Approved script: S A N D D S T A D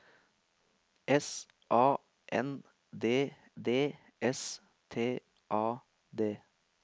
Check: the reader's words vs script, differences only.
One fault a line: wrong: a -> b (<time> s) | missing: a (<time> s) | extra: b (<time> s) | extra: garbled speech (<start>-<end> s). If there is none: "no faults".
no faults